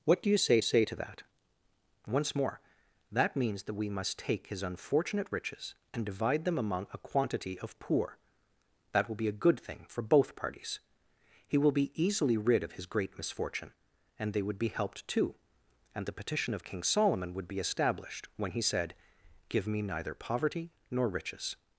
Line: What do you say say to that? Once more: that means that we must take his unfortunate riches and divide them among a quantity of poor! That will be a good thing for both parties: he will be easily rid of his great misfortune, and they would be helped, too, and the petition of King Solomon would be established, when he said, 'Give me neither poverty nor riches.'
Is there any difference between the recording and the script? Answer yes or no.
no